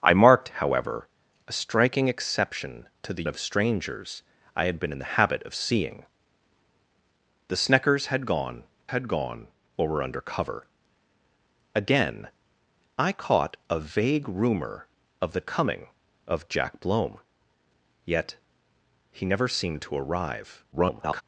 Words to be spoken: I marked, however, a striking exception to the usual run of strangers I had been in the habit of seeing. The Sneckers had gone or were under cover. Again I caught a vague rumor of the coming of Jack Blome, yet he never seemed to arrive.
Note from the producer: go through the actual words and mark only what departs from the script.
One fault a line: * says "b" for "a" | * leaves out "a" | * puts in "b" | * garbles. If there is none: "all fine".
* leaves out "usual run"
* puts in "had gone"
* garbles